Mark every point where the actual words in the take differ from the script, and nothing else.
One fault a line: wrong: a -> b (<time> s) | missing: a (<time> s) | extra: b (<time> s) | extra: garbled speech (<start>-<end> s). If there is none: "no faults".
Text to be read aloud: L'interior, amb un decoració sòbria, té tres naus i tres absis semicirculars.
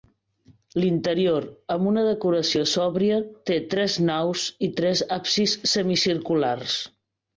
wrong: un -> una (1.9 s)